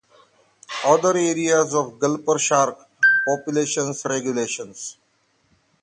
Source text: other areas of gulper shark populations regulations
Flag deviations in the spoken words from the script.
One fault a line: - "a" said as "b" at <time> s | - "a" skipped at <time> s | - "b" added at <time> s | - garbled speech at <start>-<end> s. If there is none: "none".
none